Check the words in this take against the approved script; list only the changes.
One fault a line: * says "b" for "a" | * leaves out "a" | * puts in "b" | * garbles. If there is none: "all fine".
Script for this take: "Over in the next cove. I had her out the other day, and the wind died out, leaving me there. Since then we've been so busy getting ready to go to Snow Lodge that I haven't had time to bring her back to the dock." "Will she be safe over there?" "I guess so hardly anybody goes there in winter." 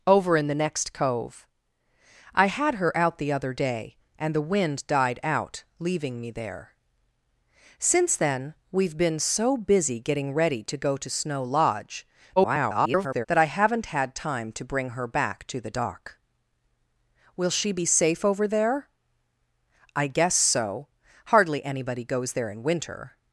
* garbles